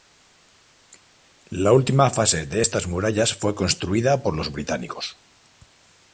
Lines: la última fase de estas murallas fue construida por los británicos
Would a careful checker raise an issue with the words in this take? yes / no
no